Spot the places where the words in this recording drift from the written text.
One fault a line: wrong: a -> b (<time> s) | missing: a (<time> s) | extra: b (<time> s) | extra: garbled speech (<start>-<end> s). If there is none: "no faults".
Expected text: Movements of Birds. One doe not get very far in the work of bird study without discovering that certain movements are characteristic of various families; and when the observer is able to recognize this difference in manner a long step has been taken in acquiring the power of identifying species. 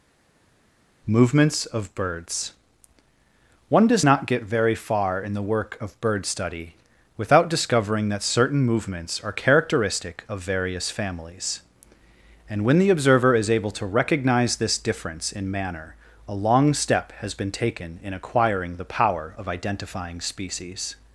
wrong: doe -> does (3.9 s)